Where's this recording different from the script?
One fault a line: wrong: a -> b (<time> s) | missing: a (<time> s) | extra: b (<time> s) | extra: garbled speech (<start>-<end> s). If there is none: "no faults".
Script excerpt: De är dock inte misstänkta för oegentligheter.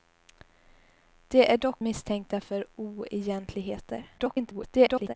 missing: inte (1.9 s)
extra: garbled speech (4.2-5.1 s)